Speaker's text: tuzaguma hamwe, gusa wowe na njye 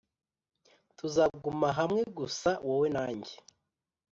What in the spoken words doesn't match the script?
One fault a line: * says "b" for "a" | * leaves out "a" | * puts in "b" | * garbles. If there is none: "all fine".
all fine